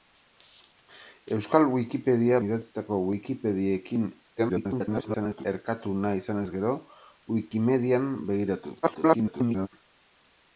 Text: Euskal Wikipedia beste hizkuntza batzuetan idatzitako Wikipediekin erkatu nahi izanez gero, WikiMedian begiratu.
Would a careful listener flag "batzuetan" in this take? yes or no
yes